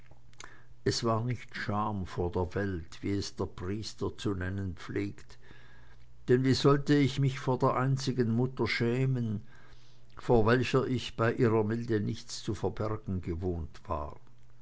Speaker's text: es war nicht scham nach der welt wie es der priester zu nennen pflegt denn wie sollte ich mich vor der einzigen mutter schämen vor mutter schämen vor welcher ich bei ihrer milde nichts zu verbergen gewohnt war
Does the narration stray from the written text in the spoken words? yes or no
yes